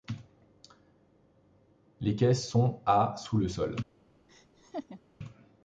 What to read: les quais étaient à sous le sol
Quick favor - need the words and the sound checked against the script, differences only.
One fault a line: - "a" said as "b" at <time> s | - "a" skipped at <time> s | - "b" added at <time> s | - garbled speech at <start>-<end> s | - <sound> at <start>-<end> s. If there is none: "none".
- "étaient" said as "sont" at 2.3 s
- laugh at 4.3-5.0 s